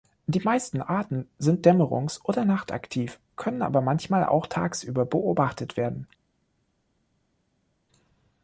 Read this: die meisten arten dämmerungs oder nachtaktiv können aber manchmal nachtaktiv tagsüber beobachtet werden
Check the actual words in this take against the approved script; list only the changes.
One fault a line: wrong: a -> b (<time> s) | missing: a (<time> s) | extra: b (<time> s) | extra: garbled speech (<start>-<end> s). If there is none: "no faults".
extra: sind (1.4 s)
wrong: nachtaktiv -> auch (4.2 s)